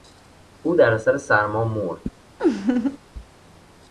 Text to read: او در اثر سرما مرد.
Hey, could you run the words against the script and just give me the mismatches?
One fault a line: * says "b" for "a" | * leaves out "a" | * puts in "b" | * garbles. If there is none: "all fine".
all fine